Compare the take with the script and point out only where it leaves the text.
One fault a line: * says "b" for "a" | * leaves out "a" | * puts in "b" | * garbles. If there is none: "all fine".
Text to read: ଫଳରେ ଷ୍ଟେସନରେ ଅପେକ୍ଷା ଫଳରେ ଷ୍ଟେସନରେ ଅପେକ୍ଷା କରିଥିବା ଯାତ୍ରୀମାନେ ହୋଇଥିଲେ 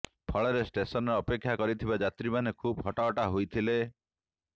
* says "କରିଥିବା ଯାତ୍ରୀମାନେ ଖୁବ୍ ହଟହଟା" for "ଫଳରେ ଷ୍ଟେସନରେ ଅପେକ୍ଷା କରିଥିବା ଯାତ୍ରୀମାନେ"